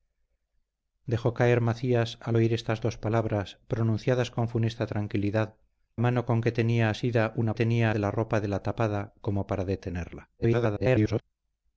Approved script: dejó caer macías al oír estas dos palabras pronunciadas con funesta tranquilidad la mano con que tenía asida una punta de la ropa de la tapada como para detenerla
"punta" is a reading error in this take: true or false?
true